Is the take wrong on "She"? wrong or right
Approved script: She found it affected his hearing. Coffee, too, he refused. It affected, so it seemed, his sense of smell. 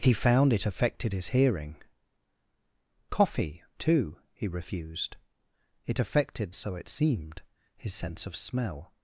wrong